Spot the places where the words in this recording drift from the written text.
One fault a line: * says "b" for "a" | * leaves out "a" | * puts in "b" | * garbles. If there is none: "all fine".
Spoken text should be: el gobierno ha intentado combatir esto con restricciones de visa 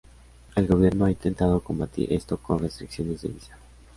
all fine